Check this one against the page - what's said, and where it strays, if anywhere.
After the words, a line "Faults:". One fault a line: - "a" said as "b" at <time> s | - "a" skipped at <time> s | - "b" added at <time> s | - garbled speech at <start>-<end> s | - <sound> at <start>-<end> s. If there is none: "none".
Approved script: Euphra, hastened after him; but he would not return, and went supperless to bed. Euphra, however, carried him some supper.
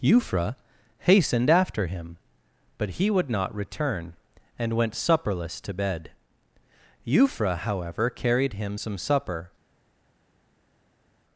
Euphra, hastened after him; but he would not return, and went supperless to bed. Euphra, however, carried him some supper.
Faults:
none